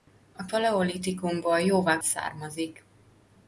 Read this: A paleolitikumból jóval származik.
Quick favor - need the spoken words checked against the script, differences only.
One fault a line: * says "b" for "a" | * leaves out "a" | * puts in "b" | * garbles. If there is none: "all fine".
all fine